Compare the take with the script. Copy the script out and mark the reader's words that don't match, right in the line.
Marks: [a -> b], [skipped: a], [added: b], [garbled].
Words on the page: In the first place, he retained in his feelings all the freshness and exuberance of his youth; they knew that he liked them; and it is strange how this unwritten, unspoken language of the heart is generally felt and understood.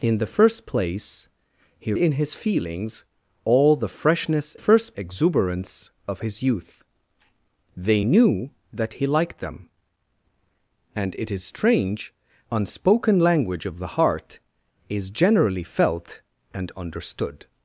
In the first place, he [skipped: retained] in his feelings all the freshness [and -> first] exuberance of his youth; they knew that he liked them; and it is strange [skipped: how this unwritten,] unspoken language of the heart is generally felt and understood.